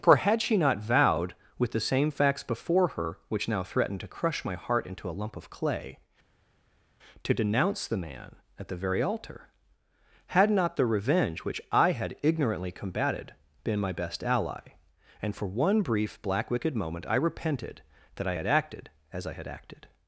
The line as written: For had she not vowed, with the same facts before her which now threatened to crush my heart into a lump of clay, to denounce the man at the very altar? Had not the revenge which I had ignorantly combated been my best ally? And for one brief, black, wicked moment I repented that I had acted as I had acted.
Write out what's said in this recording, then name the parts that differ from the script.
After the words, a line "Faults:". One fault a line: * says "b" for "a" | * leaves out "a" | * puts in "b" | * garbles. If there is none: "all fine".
For had she not vowed, with the same facts before her which now threatened to crush my heart into a lump of clay, to denounce the man at the very altar? Had not the revenge which I had ignorantly combated been my best ally? And for one brief, black, wicked moment I repented that I had acted as I had acted.
Faults:
all fine